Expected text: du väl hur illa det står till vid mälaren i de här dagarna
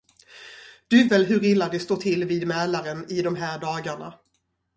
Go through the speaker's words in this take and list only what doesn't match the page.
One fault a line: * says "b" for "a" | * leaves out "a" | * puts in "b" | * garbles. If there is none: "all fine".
all fine